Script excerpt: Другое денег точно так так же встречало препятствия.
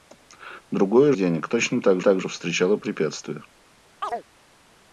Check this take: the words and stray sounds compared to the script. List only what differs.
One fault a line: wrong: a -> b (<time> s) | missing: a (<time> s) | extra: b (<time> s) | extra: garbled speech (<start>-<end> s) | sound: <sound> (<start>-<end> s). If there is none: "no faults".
sound: chirp (4.0-4.2 s)